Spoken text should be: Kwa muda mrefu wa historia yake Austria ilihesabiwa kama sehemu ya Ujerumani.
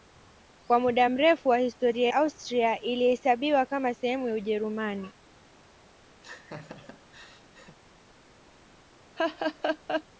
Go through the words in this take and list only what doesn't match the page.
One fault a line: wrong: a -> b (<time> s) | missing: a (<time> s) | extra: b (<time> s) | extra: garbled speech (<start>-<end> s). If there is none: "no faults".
missing: yake (2.1 s)